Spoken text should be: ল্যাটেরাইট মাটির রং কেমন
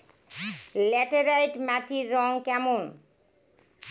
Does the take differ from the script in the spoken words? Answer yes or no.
no